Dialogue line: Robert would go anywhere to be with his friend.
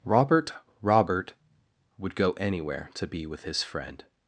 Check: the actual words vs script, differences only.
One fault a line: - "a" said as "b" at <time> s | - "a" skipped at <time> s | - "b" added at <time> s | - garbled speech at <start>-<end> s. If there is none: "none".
- "robert" added at 0.8 s